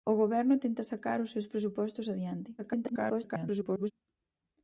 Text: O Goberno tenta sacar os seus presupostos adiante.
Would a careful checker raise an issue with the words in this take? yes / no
yes